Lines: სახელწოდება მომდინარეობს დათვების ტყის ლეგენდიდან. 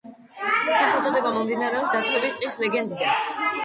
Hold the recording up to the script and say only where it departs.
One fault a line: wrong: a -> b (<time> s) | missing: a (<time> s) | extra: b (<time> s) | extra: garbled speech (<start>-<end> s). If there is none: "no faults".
no faults